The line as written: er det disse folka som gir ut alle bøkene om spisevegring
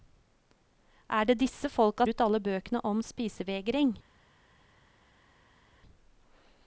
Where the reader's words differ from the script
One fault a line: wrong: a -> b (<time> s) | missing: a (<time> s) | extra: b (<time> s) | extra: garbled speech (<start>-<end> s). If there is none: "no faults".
missing: som gir (2.1 s)